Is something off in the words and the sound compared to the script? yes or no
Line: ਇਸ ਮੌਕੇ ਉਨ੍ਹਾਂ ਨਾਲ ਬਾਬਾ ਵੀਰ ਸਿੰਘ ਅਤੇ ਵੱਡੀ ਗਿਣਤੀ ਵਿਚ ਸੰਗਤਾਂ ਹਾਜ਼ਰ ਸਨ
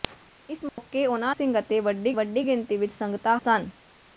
yes